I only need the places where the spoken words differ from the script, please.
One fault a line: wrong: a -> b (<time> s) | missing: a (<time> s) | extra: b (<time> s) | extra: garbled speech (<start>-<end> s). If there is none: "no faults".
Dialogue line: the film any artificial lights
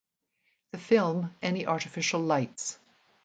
no faults